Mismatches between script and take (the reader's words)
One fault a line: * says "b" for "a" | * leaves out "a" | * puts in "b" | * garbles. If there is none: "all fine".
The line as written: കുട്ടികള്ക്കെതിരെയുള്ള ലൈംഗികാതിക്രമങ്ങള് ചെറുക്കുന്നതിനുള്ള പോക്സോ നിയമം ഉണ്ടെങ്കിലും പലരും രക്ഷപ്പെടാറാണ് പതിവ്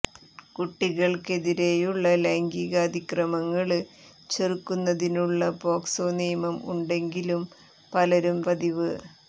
* leaves out "രക്ഷപ്പെടാറാണ്"